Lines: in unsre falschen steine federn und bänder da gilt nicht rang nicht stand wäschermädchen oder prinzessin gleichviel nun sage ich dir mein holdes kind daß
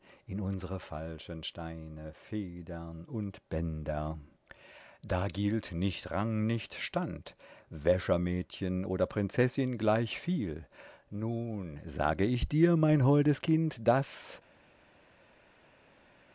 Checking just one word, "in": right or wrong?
right